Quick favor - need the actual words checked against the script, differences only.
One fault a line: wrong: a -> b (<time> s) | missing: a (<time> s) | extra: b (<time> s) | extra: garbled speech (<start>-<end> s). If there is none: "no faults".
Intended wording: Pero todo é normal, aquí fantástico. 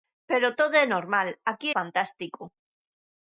no faults